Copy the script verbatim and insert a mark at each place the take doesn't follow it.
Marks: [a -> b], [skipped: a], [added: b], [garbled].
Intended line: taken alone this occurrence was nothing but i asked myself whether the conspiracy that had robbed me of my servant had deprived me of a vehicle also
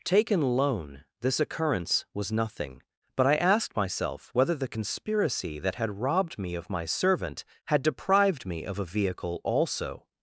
taken alone this occurrence was nothing but i asked myself whether the conspiracy that had robbed me of my servant had deprived me of a vehicle also